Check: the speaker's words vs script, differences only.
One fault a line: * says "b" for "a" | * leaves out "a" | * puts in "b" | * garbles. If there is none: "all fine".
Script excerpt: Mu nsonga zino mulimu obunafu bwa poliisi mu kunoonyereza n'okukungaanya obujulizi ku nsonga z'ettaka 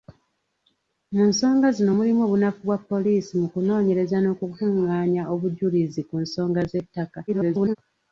* garbles